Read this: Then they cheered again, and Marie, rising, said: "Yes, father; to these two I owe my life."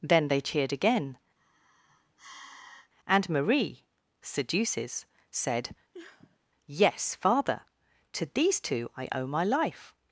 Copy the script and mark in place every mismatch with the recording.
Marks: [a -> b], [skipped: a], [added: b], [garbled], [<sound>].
Then they cheered again, [sigh] and Marie, [rising, -> seduces] said: [sniff] "Yes, father; to these two I owe my life."